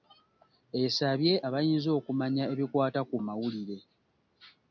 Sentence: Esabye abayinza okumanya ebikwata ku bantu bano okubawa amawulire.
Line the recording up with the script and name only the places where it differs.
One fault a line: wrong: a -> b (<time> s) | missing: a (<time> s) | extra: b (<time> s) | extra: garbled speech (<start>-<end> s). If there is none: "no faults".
missing: bantu bano okubawa (3.2 s)